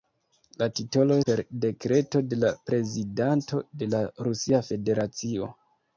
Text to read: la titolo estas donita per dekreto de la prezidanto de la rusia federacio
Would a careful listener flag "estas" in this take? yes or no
yes